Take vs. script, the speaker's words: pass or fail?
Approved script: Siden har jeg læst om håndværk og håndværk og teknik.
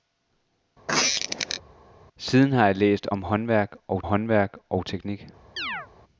pass